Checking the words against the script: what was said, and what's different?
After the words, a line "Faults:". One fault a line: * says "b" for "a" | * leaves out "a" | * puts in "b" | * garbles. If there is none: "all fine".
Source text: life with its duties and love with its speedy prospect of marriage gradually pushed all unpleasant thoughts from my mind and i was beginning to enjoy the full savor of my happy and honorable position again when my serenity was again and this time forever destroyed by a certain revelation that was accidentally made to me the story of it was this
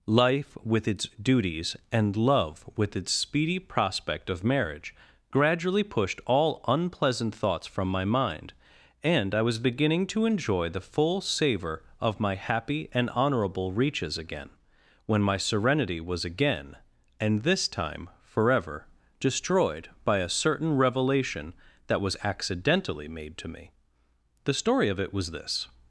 life with its duties and love with its speedy prospect of marriage gradually pushed all unpleasant thoughts from my mind and i was beginning to enjoy the full savor of my happy and honorable reaches again when my serenity was again and this time forever destroyed by a certain revelation that was accidentally made to me the story of it was this
Faults:
* says "reaches" for "position"